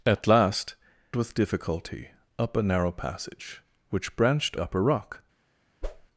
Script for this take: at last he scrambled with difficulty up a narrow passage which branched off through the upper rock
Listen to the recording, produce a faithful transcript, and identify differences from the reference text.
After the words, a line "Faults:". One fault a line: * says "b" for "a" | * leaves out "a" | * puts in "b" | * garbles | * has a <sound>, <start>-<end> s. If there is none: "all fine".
at last with difficulty up a narrow passage which branched upper rock
Faults:
* leaves out "he scrambled"
* leaves out "off through the"
* has a whoosh, 5.8-6.1 s